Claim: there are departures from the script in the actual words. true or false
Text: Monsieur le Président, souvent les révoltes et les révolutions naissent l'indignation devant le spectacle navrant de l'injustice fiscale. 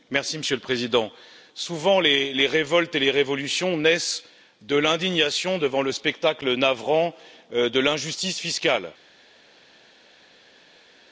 true